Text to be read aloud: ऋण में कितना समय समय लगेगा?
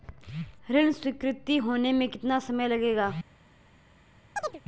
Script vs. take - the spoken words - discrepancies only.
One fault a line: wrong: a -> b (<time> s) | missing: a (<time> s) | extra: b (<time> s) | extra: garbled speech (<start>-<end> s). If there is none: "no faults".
extra: स्वीकृति होने (0.9 s)
missing: समय (2.7 s)